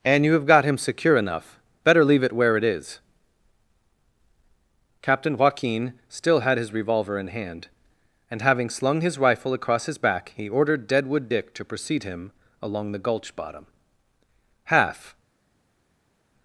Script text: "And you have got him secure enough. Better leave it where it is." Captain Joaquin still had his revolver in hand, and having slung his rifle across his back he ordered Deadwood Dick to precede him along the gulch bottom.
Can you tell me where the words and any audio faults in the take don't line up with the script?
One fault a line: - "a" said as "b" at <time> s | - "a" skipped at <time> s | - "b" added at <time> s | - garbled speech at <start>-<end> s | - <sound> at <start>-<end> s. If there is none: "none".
- "Half" added at 14.6 s